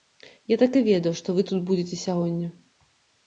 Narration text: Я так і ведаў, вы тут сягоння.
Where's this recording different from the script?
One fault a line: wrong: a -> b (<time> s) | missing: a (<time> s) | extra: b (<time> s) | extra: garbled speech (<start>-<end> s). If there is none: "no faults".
extra: што (1.2 s)
extra: будзеце (1.7 s)